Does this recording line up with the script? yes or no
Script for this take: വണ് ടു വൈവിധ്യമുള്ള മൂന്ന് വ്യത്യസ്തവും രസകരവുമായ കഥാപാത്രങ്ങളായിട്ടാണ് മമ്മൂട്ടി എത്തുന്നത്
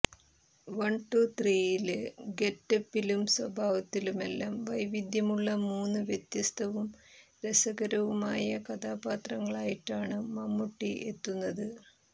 no